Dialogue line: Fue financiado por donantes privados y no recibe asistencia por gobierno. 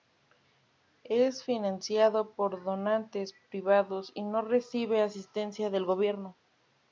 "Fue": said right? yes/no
no